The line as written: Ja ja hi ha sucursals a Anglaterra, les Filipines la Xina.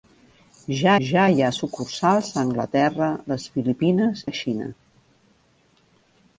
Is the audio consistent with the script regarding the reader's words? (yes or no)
yes